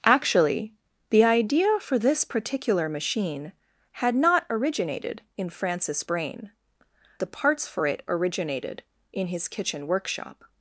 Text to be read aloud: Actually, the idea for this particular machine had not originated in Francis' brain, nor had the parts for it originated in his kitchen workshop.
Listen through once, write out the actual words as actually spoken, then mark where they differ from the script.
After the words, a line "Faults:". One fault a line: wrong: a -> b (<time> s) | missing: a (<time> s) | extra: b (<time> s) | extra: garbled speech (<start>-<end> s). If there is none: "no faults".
Actually, the idea for this particular machine had not originated in Francis' brain, the parts for it originated in his kitchen workshop.
Faults:
missing: nor had (6.5 s)